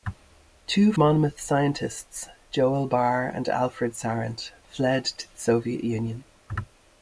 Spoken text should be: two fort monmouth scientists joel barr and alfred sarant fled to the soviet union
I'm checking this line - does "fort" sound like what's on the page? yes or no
no